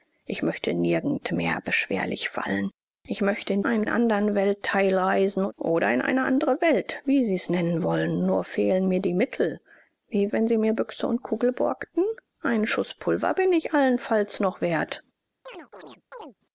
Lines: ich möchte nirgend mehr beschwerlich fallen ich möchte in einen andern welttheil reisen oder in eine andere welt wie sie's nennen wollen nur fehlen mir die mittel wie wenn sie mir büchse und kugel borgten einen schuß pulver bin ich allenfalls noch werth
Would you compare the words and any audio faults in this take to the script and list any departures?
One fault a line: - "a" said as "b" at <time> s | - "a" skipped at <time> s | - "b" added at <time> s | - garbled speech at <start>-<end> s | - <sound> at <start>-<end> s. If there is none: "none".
- chirp at 15.5-16.4 s